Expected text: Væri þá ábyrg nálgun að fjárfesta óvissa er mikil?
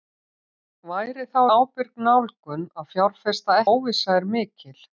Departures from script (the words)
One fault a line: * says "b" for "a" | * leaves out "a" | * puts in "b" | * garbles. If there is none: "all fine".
all fine